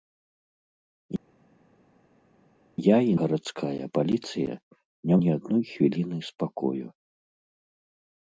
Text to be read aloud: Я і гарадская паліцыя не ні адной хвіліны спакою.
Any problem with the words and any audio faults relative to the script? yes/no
no